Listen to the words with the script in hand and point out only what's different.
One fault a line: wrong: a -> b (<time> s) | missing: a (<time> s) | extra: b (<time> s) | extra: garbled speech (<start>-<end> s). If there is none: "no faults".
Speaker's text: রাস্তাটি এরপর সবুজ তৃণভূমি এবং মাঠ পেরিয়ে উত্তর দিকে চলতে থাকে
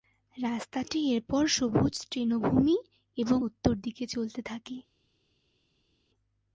missing: মাঠ পেরিয়ে (3.4 s)